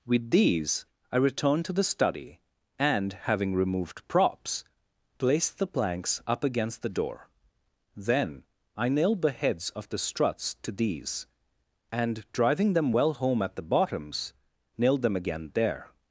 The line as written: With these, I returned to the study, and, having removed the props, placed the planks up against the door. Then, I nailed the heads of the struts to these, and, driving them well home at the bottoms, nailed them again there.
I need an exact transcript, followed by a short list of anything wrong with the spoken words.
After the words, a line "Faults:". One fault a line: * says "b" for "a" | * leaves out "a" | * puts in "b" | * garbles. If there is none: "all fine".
With these, I returned to the study, and, having removed props, placed the planks up against the door. Then, I nailed the heads of the struts to these, and, driving them well home at the bottoms, nailed them again there.
Faults:
* leaves out "the"